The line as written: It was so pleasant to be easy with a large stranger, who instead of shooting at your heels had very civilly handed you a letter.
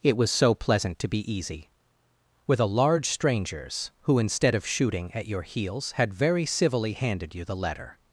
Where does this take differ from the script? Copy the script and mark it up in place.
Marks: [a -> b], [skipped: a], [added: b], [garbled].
It was so pleasant to be easy with a large [stranger, -> strangers] who instead of shooting at your heels had very civilly handed you [a -> the] letter.